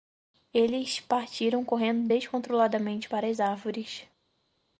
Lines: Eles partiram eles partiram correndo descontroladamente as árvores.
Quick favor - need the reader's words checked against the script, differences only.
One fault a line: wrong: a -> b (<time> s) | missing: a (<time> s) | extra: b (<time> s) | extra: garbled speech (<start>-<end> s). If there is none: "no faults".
missing: eles partiram (1.6 s)
extra: para (3.1 s)